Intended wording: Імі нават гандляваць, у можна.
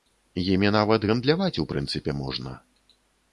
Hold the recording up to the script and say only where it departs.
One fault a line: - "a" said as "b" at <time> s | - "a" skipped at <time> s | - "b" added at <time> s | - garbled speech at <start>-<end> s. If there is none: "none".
- "прынцыпе" added at 1.7 s